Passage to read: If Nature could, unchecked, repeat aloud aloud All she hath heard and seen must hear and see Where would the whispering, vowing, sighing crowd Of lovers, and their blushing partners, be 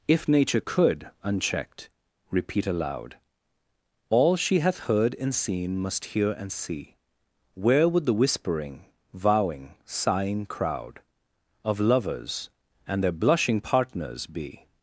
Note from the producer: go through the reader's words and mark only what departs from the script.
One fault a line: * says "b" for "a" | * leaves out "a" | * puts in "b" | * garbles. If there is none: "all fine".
* leaves out "aloud"